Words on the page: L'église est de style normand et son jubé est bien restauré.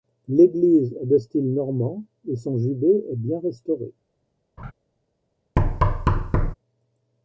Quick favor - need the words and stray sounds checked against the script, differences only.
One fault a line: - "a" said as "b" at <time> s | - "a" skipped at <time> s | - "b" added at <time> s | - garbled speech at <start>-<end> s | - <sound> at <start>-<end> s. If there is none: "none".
- laugh at 4.6-4.7 s
- thud at 5.6-6.5 s